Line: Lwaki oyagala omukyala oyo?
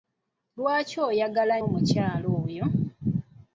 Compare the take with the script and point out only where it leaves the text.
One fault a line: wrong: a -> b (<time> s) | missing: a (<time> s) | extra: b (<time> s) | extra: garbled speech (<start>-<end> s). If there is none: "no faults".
no faults